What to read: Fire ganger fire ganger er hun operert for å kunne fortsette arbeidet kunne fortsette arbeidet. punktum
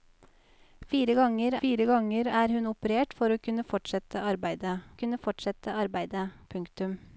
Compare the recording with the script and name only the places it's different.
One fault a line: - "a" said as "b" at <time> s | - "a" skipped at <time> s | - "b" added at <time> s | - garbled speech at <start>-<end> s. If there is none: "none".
none